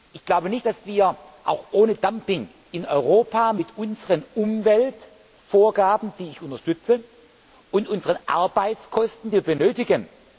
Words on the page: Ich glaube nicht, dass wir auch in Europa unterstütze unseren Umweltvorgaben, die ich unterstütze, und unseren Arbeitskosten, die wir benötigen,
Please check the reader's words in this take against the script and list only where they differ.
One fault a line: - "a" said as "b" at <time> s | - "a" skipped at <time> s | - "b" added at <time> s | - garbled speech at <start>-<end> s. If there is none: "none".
- "ohne Dumping" added at 1.7 s
- "unterstütze" said as "mit" at 3.5 s